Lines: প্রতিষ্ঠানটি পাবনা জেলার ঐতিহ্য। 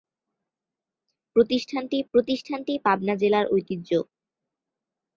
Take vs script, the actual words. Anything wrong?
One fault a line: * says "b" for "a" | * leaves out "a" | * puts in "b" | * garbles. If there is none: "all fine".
* puts in "প্রতিষ্ঠানটি"